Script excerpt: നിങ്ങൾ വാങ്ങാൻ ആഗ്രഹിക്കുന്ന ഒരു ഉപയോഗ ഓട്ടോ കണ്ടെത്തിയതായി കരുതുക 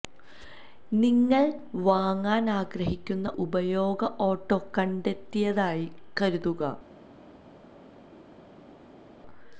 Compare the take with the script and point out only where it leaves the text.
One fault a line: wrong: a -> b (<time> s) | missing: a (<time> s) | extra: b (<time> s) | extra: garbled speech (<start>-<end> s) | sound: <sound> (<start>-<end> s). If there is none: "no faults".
missing: ഒരു (3.3 s)